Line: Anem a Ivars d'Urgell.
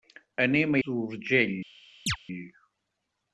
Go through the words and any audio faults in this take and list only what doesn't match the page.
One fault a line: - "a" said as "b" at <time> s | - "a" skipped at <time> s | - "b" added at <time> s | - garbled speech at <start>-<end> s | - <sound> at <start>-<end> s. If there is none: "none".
- "Ivars" skipped at 0.8 s
- chirp at 2.1-2.2 s